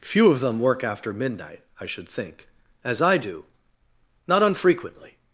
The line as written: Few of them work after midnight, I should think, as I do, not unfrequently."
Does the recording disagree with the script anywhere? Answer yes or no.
no